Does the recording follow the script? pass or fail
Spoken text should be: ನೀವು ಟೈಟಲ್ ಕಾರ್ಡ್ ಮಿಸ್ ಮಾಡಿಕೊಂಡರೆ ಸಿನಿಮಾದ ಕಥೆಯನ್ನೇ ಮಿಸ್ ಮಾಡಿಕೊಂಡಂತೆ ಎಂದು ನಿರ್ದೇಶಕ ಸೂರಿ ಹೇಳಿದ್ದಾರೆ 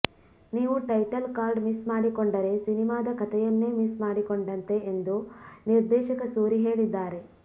pass